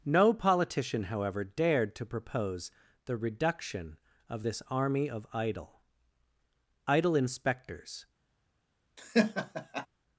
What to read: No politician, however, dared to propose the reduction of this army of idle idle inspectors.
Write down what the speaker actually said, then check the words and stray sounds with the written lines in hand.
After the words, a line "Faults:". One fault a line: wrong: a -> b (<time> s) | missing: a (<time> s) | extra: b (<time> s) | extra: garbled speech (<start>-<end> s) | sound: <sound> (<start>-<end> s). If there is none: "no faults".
No politician, however, dared to propose the reduction of this army of idle idle inspectors.
Faults:
sound: laugh (9.0-9.9 s)